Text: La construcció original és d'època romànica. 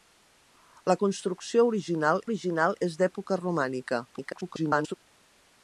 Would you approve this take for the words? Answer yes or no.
no